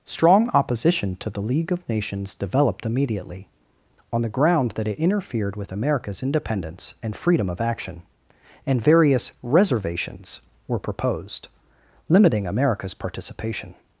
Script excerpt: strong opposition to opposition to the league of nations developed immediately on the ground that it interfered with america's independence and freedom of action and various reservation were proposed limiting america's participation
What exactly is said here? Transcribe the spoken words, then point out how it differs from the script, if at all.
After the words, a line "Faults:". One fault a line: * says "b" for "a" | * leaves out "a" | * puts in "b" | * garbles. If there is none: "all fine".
strong opposition to the league of nations developed immediately on the ground that it interfered with america's independence and freedom of action and various reservations were proposed limiting america's participation
Faults:
* leaves out "opposition to"
* says "reservations" for "reservation"